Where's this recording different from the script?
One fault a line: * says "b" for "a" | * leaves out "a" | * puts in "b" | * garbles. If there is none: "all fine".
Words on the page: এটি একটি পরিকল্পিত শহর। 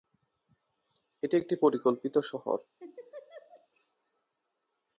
all fine